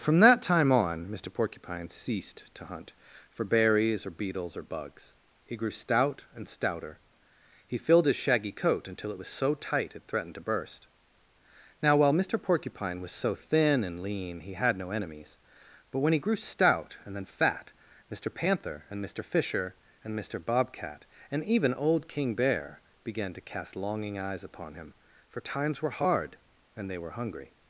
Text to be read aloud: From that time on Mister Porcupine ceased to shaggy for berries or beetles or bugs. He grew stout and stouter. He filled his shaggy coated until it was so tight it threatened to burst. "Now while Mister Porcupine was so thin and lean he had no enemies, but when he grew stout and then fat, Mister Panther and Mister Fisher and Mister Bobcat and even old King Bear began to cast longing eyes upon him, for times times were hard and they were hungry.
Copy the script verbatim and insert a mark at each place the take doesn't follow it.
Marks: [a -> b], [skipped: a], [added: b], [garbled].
From that time on Mister Porcupine ceased to [shaggy -> hunt] for berries or beetles or bugs. He grew stout and stouter. He filled his shaggy [coated -> coat] until it was so tight it threatened to burst. "Now while Mister Porcupine was so thin and lean he had no enemies, but when he grew stout and then fat, Mister Panther and Mister Fisher and Mister Bobcat and even old King Bear began to cast longing eyes upon him, for times [skipped: times] were hard and they were hungry.